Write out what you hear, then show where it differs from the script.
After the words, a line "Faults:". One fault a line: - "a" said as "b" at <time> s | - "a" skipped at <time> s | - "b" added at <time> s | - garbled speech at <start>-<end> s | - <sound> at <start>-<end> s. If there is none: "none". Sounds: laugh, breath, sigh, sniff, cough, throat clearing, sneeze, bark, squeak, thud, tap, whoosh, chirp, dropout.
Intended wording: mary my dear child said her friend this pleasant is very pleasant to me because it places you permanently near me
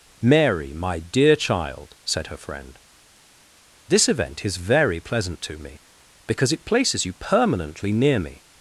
mary my dear child said her friend this event is very pleasant to me because it places you permanently near me
Faults:
- "pleasant" said as "event" at 4.1 s